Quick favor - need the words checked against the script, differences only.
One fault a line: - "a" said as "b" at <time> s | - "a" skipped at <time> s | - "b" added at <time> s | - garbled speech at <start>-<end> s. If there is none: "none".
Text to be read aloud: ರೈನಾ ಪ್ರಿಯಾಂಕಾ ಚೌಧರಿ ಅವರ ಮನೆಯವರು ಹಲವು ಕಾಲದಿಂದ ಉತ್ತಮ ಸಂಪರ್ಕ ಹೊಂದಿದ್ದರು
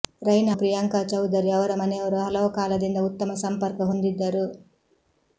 none